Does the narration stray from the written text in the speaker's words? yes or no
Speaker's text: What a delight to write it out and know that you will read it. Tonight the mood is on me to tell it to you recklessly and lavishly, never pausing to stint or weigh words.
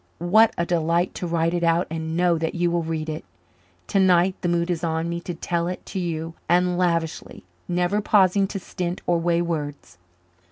yes